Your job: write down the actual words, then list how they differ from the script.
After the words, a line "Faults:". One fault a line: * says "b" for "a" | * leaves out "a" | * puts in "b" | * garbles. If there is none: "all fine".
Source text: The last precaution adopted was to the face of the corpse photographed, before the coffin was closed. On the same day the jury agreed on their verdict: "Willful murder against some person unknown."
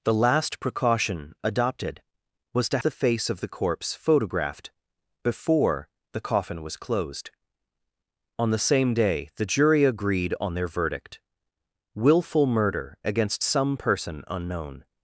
The last precaution adopted was to the face of the corpse photographed, before the coffin was closed. On the same day the jury agreed on their verdict: "Willful murder against some person unknown."
Faults:
all fine